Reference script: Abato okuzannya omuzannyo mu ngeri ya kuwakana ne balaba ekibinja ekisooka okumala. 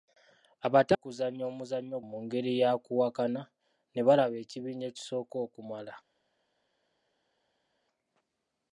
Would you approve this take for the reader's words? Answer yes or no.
yes